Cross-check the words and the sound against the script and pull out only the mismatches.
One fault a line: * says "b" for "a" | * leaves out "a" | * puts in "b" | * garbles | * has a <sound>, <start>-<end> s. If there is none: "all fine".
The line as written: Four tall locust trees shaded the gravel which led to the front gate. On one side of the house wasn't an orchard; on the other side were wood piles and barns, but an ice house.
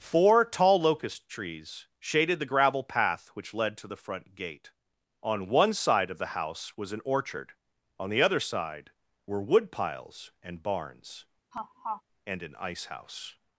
* puts in "path"
* says "was" for "wasn't"
* has a laugh, 11.5-12.0 s
* says "and" for "but"